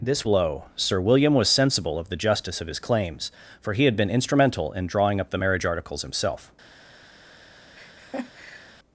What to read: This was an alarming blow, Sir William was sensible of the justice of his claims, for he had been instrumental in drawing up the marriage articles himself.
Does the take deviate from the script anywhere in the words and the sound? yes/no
yes